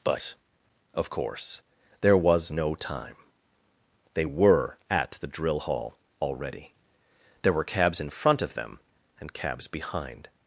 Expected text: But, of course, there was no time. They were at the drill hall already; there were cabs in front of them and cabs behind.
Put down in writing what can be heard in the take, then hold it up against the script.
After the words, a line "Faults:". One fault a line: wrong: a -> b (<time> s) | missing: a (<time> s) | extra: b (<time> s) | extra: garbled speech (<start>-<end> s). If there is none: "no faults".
But, of course, there was no time. They were at the drill hall already; there were cabs in front of them and cabs behind.
Faults:
no faults